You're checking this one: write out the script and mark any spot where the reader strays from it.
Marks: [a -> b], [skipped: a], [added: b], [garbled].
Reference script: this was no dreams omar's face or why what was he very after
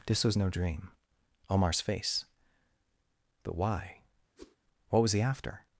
this was no [dreams -> dream] omar's face [or -> but] why what was he [skipped: very] after